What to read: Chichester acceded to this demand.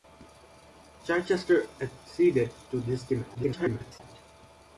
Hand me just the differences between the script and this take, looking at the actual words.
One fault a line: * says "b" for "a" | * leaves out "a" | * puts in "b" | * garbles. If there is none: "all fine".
* garbles